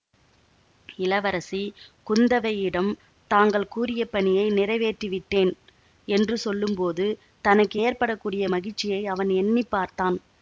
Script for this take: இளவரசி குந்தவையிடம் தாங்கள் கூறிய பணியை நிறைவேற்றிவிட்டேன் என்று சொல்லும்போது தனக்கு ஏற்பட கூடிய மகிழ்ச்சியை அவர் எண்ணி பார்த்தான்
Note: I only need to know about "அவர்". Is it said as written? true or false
false